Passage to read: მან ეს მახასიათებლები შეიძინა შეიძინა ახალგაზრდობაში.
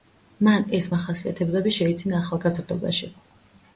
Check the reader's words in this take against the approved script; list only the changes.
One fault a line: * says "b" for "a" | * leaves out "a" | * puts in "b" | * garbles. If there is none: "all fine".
* leaves out "შეიძინა"